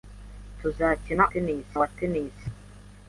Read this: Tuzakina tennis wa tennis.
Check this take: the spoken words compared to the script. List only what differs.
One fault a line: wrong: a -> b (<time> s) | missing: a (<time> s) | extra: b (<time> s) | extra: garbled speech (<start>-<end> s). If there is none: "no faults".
no faults